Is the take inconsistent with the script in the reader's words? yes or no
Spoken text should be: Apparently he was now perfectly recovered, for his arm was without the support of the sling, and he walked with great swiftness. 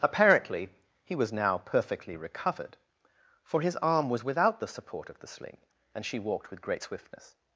yes